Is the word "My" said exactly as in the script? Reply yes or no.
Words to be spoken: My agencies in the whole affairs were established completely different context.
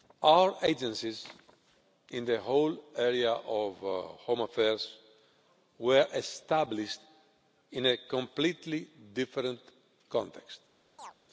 no